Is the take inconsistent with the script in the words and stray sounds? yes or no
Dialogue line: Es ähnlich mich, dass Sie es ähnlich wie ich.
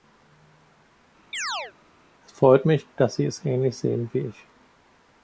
yes